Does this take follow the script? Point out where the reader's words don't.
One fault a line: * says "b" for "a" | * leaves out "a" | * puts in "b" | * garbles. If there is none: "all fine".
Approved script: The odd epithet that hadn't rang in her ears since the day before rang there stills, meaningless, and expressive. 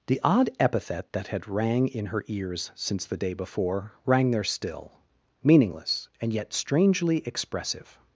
* says "had" for "hadn't"
* says "still" for "stills"
* puts in "yet strangely"